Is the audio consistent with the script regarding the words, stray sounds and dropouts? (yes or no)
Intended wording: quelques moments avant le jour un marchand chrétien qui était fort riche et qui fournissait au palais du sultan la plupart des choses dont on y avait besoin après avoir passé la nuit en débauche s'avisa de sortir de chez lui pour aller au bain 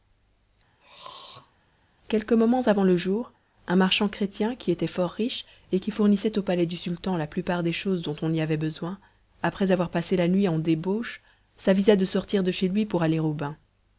no